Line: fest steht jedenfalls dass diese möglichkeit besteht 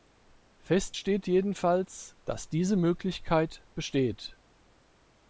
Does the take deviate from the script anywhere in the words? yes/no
no